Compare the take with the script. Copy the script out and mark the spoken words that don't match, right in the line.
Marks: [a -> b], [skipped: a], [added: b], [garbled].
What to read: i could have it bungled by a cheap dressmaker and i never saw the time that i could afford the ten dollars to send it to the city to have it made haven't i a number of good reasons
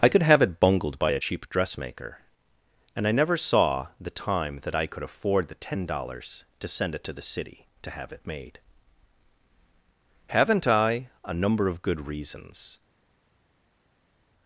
i could have it bungled by a cheap dressmaker and i never saw the time that i could afford the ten dollars to send it to the city to have it made haven't i a number of good reasons